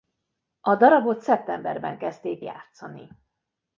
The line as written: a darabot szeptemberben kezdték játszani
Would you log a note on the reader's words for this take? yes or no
no